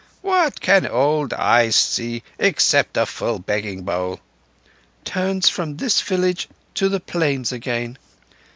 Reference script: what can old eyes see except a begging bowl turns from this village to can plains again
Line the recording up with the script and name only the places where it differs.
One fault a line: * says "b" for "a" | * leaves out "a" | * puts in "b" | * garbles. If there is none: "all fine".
* puts in "full"
* says "the" for "can"